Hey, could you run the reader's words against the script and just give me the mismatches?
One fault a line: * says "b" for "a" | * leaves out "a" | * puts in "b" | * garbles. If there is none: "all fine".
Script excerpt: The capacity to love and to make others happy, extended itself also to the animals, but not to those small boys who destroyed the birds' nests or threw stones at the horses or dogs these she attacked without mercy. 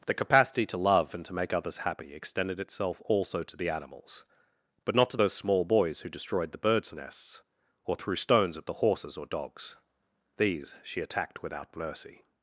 all fine